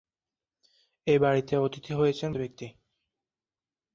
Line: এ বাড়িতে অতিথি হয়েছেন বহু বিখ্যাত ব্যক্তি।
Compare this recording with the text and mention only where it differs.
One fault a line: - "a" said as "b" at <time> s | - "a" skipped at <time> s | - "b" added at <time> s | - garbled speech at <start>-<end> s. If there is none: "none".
- "বহু বিখ্যাত" skipped at 2.3 s